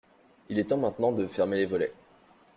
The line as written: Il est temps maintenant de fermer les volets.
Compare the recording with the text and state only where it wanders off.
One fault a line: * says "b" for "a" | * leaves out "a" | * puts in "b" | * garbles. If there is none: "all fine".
all fine